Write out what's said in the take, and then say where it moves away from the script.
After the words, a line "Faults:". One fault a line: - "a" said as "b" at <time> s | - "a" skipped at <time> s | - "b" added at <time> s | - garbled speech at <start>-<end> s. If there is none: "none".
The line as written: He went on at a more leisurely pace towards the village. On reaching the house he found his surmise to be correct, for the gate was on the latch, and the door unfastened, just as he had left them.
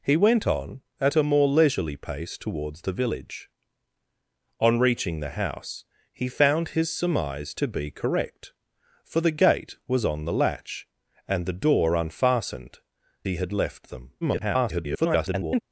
He went on at a more leisurely pace towards the village. On reaching the house he found his surmise to be correct, for the gate was on the latch, and the door unfastened, he had left them. [garbled]
Faults:
- "just as" skipped at 12.8 s
- garbled speech at 14.2-15.6 s